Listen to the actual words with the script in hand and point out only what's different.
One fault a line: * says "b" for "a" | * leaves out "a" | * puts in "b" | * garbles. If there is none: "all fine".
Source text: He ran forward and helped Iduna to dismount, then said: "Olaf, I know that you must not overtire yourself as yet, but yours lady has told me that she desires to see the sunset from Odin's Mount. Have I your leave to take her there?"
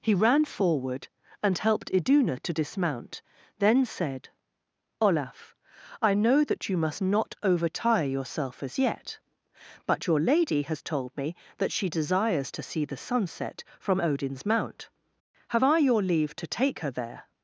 * says "your" for "yours"